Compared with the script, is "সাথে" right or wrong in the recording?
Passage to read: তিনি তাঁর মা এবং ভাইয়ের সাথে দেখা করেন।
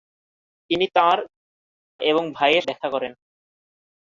wrong